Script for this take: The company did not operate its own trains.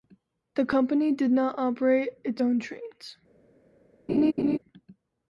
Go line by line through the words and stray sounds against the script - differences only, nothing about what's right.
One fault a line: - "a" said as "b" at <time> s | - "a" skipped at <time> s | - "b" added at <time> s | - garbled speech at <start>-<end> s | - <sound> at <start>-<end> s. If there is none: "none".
- laugh at 4.1-4.6 s